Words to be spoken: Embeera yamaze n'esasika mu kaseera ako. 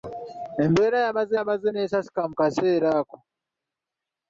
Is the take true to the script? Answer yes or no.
no